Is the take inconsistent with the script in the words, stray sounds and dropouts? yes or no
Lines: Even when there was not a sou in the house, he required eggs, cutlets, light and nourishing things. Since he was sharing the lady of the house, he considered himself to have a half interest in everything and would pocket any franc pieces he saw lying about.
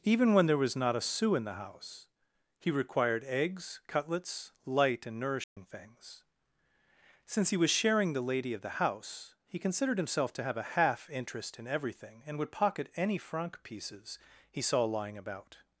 yes